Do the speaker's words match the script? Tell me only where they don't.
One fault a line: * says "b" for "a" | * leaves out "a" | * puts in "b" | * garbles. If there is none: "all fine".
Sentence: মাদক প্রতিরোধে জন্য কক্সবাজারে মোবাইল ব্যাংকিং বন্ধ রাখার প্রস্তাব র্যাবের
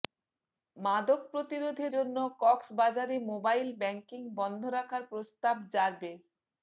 all fine